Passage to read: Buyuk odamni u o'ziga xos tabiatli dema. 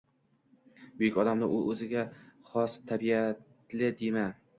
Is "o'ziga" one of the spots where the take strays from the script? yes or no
no